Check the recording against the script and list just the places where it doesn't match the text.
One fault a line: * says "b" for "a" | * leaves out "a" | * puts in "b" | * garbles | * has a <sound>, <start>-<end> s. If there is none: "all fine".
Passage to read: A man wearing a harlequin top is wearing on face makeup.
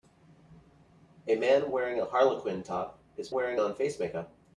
all fine